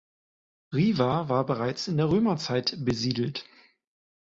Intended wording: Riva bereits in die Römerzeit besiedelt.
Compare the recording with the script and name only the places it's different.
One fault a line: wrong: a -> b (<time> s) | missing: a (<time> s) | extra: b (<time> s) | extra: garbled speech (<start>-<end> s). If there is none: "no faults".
extra: war (1.3 s)
wrong: die -> der (2.0 s)